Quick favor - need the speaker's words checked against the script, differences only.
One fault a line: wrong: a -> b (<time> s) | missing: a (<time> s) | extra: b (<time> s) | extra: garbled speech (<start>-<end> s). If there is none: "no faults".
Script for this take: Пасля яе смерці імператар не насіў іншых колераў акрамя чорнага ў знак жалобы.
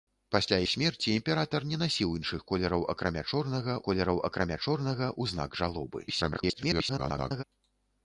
missing: яе (0.6 s)
extra: колераў акрамя чорнага (3.9 s)
extra: garbled speech (6.1-7.4 s)